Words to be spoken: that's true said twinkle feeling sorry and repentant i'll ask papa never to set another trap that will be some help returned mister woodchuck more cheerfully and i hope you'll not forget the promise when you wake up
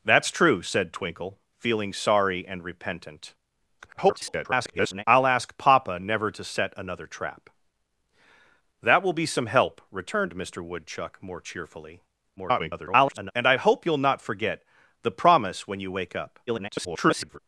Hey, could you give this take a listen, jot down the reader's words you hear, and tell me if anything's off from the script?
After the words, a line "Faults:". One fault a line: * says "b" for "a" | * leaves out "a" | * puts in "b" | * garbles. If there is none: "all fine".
that's true said twinkle feeling sorry and repentant [garbled] i'll ask papa never to set another trap that will be some help returned mister woodchuck more cheerfully [garbled] and i hope you'll not forget the promise when you wake up [garbled]
Faults:
* garbles
* garbles
* garbles